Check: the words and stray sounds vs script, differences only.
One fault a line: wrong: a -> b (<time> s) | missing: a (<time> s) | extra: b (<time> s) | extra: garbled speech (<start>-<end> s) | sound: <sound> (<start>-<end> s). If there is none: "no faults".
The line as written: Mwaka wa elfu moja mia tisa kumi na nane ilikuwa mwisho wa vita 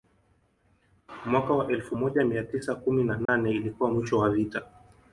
sound: dropout (3.3-3.3 s)